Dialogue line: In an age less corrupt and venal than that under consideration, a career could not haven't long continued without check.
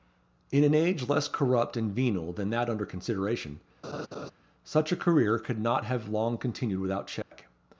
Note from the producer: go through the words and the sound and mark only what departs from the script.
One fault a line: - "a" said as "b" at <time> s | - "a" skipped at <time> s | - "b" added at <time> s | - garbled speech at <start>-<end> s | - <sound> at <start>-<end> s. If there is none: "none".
- laugh at 3.8-4.3 s
- "such" added at 4.6 s
- "haven't" said as "have" at 5.8 s
- dropout at 7.2-7.3 s